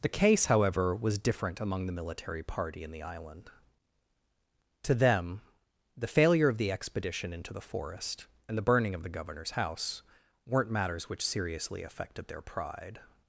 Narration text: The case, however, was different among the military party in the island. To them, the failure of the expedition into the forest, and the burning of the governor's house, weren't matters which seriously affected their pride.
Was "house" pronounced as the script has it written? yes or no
yes